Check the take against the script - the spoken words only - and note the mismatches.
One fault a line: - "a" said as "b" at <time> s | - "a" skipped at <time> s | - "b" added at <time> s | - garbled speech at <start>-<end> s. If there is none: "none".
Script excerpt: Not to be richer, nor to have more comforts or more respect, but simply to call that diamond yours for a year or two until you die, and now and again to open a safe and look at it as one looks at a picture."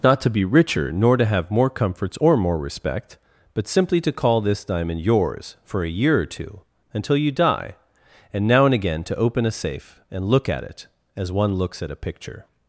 - "that" said as "this" at 4.4 s